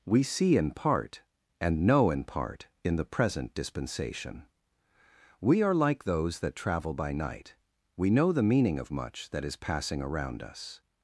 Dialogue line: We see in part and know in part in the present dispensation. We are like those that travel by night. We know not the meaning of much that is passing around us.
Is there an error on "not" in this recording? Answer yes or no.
yes